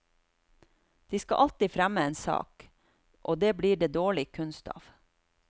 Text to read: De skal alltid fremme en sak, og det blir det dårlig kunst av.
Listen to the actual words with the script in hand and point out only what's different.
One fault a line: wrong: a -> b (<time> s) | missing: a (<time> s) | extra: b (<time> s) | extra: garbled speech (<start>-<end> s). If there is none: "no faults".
no faults